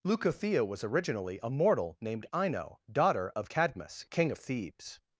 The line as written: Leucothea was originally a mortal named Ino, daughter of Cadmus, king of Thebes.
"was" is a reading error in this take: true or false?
false